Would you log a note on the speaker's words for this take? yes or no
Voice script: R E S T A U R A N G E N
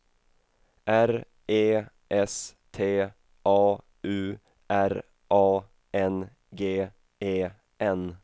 no